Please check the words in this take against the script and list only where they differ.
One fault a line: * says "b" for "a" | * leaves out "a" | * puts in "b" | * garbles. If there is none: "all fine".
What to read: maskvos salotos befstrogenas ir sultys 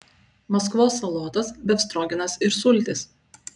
all fine